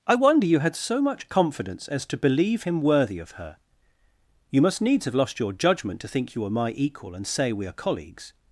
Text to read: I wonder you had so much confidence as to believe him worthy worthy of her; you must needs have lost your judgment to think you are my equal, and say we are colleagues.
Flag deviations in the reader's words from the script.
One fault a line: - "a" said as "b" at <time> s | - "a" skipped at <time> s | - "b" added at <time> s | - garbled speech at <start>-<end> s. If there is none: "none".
- "worthy" skipped at 3.2 s